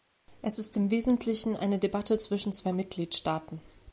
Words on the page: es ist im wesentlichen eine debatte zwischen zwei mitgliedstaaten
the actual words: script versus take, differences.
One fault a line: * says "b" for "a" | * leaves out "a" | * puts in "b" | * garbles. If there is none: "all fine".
all fine